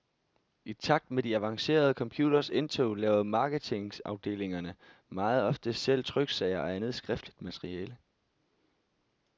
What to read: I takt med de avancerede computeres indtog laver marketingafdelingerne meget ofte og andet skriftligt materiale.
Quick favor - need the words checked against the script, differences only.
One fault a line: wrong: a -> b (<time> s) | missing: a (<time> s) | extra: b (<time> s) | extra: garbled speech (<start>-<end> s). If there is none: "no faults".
extra: selv tryksager (5.7 s)